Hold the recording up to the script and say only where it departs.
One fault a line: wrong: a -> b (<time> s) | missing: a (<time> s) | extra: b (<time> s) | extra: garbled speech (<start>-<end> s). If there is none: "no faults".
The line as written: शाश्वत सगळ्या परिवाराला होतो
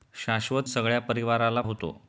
no faults